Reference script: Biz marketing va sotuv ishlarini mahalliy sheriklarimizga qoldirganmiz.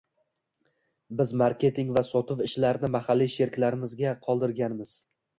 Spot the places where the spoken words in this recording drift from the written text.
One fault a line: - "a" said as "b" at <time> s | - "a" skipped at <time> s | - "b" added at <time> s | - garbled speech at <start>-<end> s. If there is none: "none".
none